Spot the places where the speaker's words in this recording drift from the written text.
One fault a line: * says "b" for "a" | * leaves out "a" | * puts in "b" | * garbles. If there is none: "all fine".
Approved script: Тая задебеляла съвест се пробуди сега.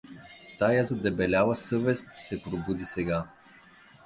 all fine